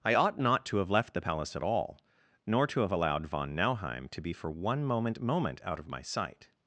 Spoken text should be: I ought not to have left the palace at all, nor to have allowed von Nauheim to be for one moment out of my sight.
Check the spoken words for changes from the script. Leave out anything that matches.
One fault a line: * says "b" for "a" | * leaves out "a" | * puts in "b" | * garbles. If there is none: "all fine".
* puts in "moment"